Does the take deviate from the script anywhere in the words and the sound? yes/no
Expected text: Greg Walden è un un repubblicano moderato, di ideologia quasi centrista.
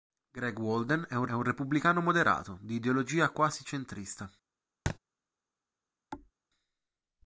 yes